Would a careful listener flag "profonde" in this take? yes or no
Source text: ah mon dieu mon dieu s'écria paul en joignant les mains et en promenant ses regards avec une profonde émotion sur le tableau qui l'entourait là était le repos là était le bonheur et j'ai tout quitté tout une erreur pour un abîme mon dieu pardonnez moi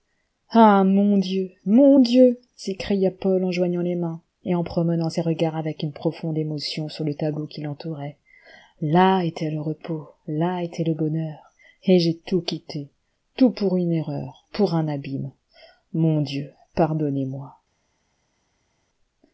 no